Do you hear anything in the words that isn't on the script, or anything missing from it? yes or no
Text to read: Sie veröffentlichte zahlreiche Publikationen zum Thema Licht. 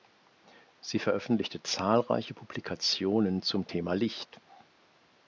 no